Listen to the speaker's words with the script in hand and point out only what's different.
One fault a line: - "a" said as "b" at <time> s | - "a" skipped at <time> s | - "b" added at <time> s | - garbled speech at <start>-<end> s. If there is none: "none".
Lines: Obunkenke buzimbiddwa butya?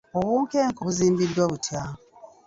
none